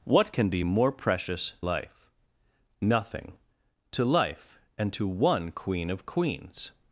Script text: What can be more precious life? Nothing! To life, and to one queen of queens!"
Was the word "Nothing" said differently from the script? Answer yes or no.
no